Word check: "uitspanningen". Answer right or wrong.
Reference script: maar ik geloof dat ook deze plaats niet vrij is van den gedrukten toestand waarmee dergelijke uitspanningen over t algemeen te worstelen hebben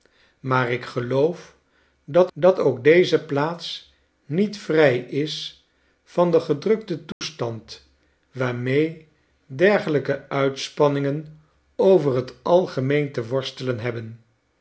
right